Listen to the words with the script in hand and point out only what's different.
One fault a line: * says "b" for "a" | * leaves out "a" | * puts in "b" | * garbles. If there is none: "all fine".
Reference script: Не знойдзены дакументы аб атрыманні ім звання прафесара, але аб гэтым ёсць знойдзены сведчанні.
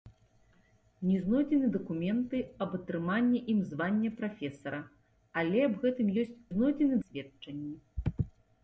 all fine